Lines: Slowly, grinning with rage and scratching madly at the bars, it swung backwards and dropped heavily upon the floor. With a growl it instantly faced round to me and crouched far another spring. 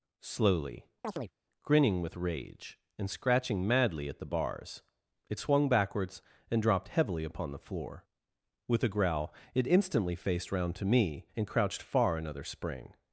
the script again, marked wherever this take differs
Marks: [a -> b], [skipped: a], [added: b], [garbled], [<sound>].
Slowly, [chirp] grinning with rage and scratching madly at the bars, it swung backwards and dropped heavily upon the floor. With a growl it instantly faced round to me and crouched far another spring.